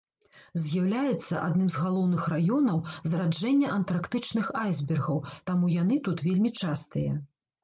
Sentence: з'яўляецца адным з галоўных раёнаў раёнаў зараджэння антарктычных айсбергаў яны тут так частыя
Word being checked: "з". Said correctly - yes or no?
yes